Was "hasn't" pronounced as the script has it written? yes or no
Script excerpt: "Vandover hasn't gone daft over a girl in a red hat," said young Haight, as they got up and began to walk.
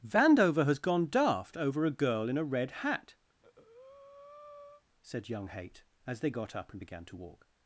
no